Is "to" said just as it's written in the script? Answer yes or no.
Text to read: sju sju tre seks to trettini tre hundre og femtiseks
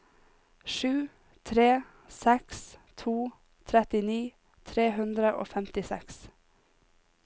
yes